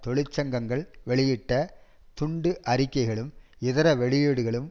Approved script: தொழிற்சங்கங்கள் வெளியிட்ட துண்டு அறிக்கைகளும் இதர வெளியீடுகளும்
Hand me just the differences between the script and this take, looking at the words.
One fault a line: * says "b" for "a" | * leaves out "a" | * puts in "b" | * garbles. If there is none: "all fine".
all fine